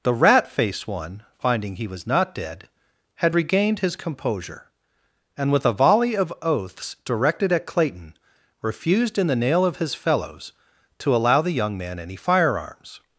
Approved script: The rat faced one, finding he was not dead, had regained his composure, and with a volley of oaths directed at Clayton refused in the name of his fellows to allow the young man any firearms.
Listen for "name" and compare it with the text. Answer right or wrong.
wrong